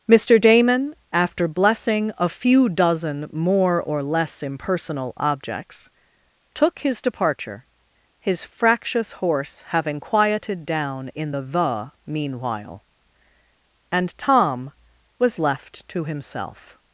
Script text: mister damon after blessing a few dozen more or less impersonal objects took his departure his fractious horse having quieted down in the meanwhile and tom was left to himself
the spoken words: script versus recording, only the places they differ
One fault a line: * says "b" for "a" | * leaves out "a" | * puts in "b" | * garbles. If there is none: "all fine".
* puts in "the"